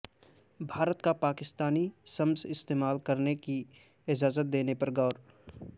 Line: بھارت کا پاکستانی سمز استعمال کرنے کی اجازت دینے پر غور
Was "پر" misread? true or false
false